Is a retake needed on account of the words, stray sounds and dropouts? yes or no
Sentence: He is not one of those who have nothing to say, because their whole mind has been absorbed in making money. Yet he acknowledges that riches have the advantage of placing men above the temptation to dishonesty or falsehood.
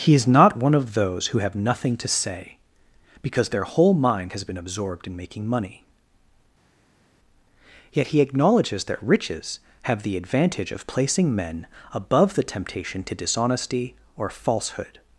no